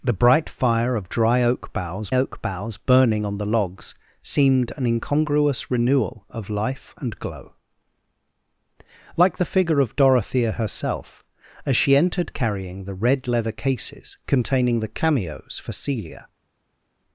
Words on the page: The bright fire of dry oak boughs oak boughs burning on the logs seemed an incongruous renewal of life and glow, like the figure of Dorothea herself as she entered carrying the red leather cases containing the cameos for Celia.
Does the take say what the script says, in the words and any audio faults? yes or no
yes